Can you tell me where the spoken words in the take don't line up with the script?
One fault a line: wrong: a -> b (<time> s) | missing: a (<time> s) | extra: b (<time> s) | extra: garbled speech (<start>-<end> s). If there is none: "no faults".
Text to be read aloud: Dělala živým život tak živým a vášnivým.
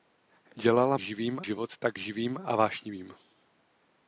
no faults